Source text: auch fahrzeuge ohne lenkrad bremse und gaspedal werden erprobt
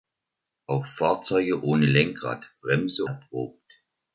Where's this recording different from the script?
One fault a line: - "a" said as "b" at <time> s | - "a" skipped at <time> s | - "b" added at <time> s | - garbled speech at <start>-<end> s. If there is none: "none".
- "und gaspedal werden" skipped at 3.0 s